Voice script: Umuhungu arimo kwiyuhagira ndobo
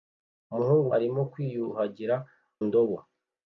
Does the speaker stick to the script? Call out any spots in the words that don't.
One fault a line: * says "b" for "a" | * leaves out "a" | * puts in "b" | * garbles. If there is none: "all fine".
all fine